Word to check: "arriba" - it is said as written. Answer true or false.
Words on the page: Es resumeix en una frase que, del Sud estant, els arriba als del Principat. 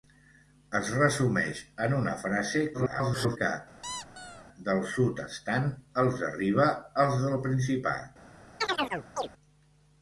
true